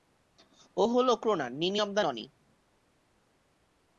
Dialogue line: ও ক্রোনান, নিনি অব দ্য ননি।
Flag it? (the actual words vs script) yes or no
yes